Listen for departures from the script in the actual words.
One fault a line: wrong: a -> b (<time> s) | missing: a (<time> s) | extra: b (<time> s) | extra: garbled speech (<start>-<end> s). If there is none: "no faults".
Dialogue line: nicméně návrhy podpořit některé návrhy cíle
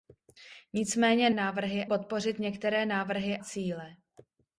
no faults